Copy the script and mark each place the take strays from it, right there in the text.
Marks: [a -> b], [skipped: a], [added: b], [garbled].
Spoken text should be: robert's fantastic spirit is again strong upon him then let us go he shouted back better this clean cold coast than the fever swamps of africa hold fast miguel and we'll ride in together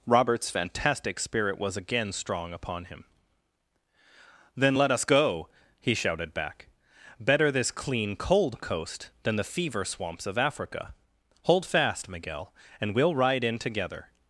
robert's fantastic spirit [is -> was] again strong upon him then let us go he shouted back better this clean cold coast than the fever swamps of africa hold fast miguel and we'll ride in together